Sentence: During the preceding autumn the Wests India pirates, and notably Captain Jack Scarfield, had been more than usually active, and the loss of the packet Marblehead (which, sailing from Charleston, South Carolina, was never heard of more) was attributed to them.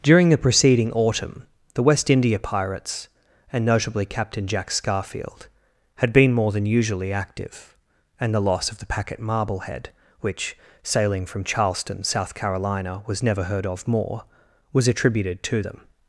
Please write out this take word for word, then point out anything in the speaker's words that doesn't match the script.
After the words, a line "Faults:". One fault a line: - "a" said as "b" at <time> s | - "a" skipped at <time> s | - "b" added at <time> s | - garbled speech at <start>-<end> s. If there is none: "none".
During the preceding autumn the West India pirates, and notably Captain Jack Scarfield, had been more than usually active, and the loss of the packet Marblehead (which, sailing from Charleston, South Carolina, was never heard of more) was attributed to them.
Faults:
- "Wests" said as "West" at 1.8 s